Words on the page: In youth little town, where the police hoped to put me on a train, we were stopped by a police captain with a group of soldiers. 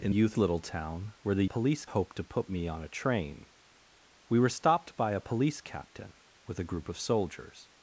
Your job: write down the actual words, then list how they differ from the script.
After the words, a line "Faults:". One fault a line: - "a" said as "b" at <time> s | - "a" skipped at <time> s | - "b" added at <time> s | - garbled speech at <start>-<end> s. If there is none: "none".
In youth little town, where the police hoped to put me on a train, we were stopped by a police captain with a group of soldiers.
Faults:
none